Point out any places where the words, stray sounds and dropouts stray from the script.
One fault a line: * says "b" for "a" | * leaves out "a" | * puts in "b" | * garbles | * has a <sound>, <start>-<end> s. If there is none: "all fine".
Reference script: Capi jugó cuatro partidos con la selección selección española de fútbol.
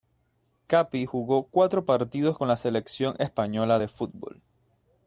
* leaves out "selección"